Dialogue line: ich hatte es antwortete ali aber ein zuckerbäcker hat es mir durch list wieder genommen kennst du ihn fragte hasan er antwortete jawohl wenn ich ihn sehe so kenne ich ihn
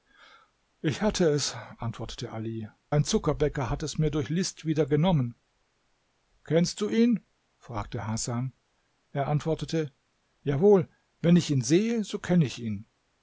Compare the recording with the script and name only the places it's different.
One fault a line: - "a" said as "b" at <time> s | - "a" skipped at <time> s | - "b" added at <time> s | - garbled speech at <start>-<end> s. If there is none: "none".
- "aber" skipped at 2.7 s